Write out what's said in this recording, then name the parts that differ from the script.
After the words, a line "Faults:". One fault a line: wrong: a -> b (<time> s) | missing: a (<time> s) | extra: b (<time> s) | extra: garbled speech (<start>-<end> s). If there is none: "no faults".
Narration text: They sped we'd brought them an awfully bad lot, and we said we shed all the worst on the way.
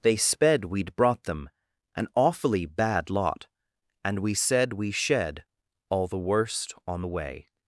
They sped we'd brought them an awfully bad lot, and we said we shed all the worst on the way.
Faults:
no faults